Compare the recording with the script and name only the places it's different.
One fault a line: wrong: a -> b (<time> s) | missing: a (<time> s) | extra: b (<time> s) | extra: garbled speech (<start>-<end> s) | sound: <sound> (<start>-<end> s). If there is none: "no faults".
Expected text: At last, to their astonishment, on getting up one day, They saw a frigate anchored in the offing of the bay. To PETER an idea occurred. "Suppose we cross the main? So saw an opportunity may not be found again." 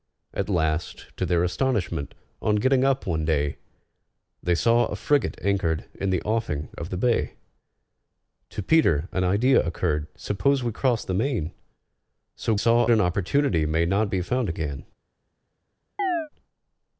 sound: chirp (16.0-16.3 s)